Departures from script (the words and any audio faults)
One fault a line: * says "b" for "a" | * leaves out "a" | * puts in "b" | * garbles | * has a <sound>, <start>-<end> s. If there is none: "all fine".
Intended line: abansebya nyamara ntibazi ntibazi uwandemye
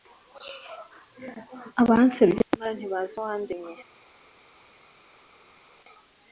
* leaves out "ntibazi"